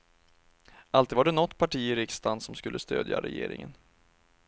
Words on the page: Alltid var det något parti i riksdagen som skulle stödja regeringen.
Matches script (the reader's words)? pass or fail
pass